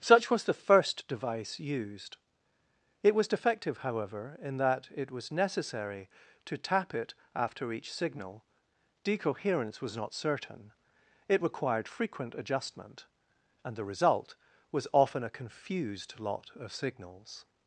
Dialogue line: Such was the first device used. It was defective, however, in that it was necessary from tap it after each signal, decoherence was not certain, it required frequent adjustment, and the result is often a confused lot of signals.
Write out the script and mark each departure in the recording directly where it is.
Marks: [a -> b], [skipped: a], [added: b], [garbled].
Such was the first device used. It was defective, however, in that it was necessary [from -> to] tap it after each signal, decoherence was not certain, it required frequent adjustment, and the result [is -> was] often a confused lot of signals.